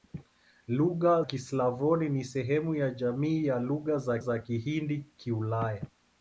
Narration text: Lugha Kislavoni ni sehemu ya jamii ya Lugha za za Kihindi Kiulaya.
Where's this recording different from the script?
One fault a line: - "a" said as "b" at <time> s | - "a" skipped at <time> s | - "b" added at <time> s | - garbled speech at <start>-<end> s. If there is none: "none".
none